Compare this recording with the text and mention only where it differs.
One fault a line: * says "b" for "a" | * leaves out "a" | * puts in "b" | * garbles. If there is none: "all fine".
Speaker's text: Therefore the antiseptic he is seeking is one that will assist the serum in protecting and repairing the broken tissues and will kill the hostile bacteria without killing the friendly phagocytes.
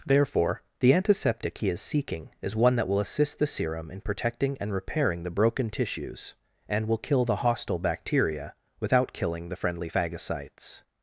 all fine